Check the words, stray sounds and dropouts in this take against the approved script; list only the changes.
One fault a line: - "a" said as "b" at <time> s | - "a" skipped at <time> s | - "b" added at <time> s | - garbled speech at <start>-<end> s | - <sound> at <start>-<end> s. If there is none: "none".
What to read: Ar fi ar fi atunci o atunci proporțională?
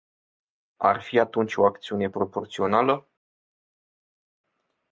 - "ar fi" skipped at 1.2 s
- "atunci" said as "acțiune" at 1.7 s